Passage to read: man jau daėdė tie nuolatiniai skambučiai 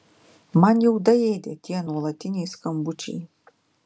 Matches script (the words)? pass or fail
pass